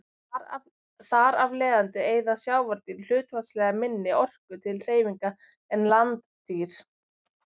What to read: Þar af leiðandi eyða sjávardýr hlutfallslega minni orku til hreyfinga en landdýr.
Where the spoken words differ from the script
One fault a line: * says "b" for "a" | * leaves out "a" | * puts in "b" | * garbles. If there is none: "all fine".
all fine